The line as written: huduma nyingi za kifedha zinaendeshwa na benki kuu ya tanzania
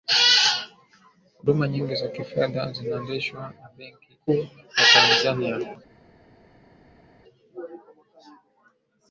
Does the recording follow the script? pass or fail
pass